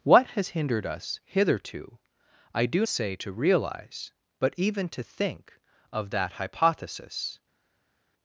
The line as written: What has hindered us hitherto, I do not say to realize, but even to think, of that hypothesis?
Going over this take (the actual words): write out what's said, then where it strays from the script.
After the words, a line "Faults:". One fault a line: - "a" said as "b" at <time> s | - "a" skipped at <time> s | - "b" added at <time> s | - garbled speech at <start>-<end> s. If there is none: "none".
What has hindered us hitherto, I do say to realize, but even to think, of that hypothesis?
Faults:
- "not" skipped at 2.9 s